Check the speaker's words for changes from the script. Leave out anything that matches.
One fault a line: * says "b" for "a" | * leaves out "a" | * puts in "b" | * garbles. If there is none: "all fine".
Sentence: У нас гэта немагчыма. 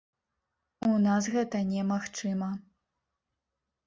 all fine